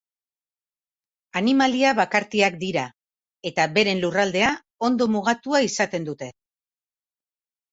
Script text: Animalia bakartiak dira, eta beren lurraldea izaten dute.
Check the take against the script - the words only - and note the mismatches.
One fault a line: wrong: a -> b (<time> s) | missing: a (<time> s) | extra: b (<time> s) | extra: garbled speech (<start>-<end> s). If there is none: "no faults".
extra: ondo mugatua (4.9 s)